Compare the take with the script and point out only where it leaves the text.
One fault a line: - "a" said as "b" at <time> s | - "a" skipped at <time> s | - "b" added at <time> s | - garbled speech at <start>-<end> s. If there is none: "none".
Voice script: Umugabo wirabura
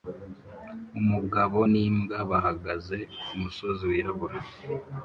- "n'imbwa bahagaze kumusozi" added at 1.7 s